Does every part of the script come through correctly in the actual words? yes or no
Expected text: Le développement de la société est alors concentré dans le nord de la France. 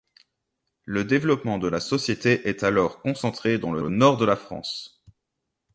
no